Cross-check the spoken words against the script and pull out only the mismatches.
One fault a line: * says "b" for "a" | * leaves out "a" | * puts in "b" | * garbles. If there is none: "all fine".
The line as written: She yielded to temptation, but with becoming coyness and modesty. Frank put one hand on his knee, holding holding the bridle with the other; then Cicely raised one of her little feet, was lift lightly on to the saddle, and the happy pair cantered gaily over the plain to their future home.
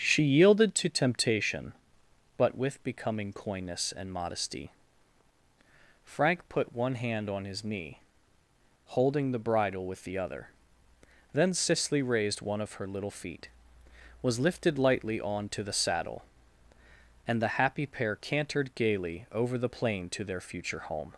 * leaves out "holding"
* says "lifted" for "lift"